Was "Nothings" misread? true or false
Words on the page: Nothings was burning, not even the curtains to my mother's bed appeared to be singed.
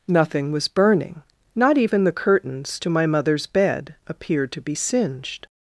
true